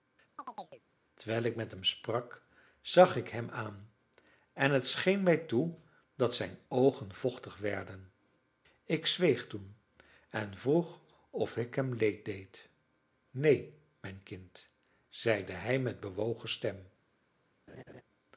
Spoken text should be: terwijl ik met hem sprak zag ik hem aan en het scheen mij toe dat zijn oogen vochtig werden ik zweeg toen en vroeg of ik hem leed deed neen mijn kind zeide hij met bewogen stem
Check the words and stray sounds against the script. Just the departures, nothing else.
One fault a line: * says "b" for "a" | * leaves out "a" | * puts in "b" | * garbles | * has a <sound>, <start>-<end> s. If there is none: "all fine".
* has a chirp, 0.4-0.8 s
* has a laugh, 17.7-18.0 s